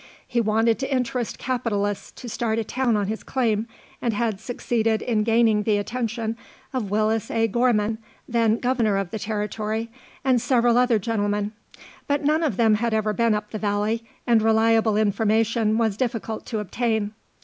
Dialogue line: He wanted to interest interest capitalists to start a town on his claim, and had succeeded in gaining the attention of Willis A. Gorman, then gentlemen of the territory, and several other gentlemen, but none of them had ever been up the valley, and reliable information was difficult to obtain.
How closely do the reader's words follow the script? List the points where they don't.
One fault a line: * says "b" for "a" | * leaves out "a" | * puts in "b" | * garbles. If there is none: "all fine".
* leaves out "interest"
* says "governor" for "gentlemen"